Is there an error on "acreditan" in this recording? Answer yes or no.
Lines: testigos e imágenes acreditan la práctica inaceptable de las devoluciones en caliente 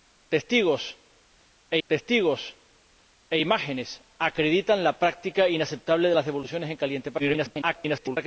no